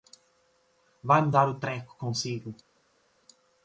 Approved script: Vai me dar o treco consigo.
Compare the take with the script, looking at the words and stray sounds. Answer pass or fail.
pass